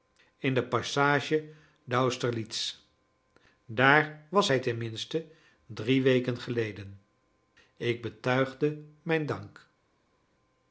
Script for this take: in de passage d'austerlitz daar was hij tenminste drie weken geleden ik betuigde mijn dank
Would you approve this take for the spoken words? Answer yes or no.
yes